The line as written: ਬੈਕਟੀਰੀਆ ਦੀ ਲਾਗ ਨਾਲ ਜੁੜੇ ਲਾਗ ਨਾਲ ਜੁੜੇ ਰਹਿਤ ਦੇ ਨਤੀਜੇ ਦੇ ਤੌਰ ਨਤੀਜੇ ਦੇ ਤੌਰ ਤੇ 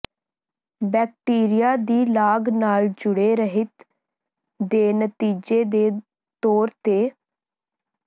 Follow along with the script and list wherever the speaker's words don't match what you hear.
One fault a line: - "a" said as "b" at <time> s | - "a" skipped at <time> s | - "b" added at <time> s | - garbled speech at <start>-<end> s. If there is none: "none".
- "ਲਾਗ ਨਾਲ ਜੁੜੇ" skipped at 3.4 s
- "ਨਤੀਜੇ ਦੇ ਤੌਰ" skipped at 6.7 s